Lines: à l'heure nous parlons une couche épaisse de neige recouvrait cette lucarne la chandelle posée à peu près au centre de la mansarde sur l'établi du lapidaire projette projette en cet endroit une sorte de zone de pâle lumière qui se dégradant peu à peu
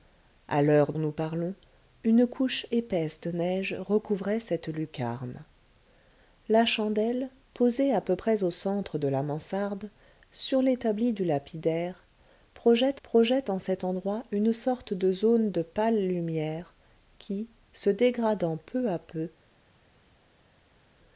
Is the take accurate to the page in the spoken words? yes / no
yes